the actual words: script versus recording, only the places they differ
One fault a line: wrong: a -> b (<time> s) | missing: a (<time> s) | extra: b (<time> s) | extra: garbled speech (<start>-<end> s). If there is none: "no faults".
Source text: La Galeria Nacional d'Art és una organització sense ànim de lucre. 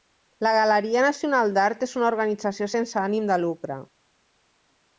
no faults